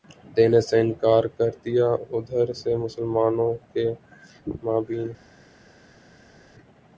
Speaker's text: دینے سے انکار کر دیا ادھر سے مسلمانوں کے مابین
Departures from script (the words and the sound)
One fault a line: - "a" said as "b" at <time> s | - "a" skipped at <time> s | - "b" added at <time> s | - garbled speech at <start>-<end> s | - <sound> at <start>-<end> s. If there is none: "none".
none